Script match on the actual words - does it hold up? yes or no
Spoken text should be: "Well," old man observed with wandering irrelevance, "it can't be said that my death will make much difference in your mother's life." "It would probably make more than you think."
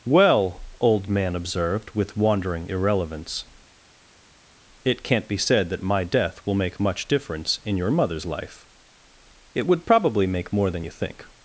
yes